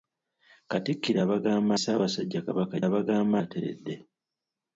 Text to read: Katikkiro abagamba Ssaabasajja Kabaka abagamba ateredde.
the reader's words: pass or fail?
pass